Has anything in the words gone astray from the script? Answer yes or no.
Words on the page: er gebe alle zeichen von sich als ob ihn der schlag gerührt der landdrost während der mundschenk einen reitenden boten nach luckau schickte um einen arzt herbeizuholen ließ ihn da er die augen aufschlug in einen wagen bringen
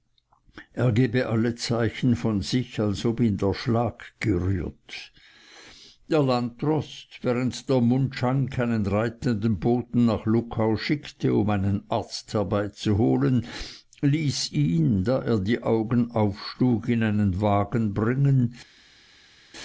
no